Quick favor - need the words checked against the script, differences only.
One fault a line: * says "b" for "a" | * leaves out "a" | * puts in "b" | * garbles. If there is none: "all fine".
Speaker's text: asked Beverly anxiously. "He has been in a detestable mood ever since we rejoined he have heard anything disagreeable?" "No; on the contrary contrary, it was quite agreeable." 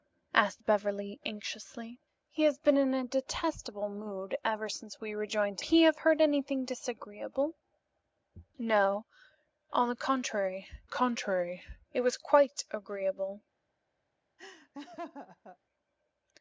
all fine